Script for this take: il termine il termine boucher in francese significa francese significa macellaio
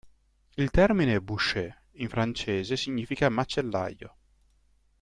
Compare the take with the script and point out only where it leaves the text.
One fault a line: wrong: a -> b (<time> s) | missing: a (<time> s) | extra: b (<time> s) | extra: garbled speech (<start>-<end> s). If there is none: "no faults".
missing: il termine (1.2 s)
missing: francese significa (3.3 s)